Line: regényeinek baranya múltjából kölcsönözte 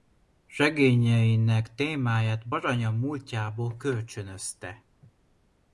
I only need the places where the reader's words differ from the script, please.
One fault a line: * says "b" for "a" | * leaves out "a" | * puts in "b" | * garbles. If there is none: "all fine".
* puts in "témáját"